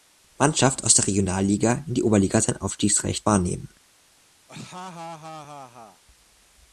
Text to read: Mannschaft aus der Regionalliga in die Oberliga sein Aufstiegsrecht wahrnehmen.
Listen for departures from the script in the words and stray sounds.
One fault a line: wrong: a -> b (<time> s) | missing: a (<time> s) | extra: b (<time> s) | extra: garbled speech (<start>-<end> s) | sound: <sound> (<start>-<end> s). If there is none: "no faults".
sound: laugh (4.5-6.0 s)